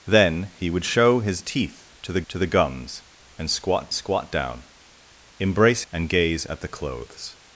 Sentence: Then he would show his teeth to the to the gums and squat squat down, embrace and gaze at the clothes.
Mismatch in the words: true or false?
false